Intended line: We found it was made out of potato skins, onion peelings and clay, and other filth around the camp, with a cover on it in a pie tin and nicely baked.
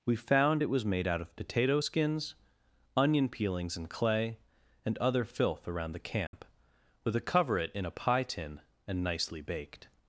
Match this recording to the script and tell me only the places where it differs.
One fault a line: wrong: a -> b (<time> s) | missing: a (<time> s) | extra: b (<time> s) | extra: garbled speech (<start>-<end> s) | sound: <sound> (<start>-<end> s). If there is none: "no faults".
sound: dropout (6.3-6.3 s)
missing: on (7.6 s)